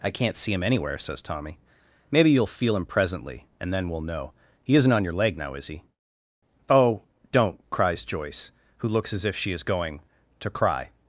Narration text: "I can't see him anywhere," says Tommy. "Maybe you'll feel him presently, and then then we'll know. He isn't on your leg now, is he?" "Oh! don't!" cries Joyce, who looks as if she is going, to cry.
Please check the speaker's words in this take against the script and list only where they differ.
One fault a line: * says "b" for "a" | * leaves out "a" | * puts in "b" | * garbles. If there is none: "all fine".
* leaves out "then"